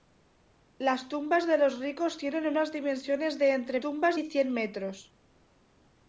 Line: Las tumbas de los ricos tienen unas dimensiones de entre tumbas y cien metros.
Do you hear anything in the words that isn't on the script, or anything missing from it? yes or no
no